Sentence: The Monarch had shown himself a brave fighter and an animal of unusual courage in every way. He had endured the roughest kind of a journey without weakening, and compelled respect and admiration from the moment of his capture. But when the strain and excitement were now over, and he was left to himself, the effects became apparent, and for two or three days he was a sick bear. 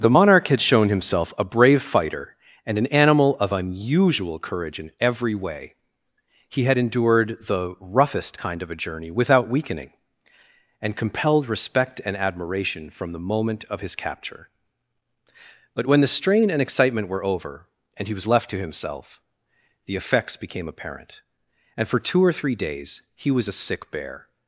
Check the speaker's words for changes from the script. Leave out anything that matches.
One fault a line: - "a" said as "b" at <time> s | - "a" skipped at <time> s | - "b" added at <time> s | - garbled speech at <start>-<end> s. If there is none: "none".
- "now" skipped at 17.2 s